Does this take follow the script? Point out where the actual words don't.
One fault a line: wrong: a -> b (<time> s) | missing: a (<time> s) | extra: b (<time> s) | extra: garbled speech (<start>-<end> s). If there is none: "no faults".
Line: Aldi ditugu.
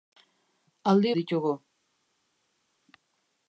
no faults